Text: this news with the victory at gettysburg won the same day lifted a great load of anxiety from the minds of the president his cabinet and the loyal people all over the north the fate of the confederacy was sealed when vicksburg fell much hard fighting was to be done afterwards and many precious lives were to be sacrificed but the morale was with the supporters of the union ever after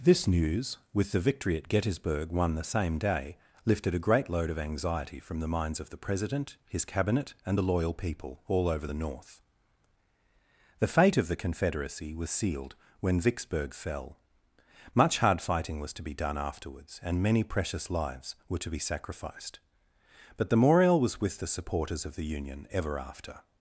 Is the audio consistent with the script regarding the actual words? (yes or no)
yes